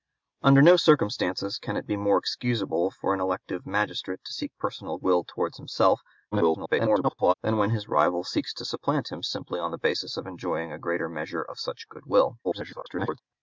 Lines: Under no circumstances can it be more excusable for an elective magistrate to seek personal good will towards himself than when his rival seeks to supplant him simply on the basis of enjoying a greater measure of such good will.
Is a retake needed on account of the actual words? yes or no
yes